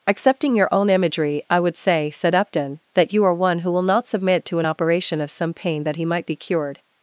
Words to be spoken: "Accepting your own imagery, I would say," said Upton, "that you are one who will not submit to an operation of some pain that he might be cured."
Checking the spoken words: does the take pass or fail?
pass